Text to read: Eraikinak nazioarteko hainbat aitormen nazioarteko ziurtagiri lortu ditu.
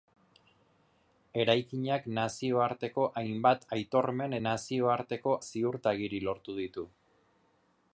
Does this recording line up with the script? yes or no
yes